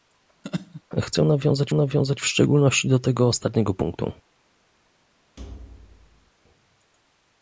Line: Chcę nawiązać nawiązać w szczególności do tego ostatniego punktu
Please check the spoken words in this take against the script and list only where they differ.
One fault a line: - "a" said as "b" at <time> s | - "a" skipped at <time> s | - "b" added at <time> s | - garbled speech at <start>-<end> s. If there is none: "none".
none